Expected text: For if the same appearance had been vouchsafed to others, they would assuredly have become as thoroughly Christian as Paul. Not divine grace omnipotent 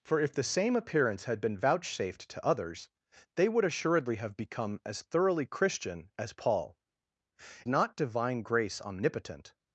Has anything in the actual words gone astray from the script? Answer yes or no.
no